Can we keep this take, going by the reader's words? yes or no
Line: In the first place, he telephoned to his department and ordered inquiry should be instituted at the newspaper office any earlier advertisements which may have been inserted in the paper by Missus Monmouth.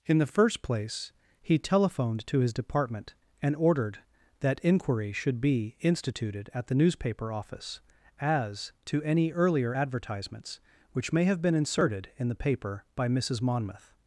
no